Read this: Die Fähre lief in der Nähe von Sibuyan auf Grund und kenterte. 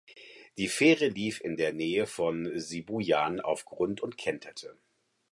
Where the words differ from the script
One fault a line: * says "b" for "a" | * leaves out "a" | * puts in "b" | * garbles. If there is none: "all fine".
all fine